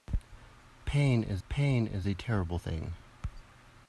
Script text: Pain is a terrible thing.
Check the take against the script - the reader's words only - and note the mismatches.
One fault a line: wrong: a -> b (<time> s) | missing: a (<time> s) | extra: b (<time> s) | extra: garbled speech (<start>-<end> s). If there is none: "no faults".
extra: pain is (1.5 s)